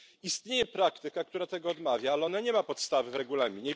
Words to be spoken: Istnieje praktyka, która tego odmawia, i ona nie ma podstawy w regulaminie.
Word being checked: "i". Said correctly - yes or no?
no